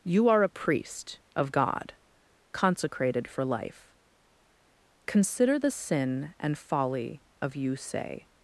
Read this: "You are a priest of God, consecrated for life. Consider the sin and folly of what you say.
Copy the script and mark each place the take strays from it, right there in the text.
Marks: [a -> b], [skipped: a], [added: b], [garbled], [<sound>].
"You are a priest of God, consecrated for life. Consider the sin and folly of [skipped: what] you say.